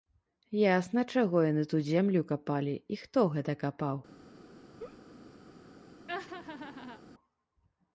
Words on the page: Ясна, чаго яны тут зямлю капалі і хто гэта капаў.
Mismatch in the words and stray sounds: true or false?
true